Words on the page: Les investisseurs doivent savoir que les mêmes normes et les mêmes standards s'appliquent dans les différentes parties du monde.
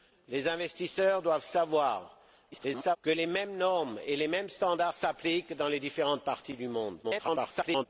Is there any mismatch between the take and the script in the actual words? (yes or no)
yes